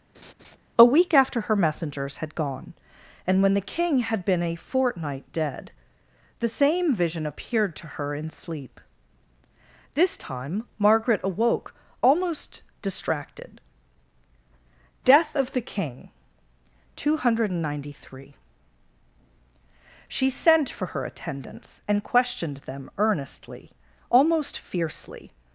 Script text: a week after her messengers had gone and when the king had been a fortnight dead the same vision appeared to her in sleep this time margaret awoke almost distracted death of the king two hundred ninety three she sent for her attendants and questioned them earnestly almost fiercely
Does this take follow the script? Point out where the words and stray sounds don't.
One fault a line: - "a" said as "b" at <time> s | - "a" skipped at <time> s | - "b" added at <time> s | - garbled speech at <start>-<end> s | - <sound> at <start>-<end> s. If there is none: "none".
- laugh at 0.1-0.6 s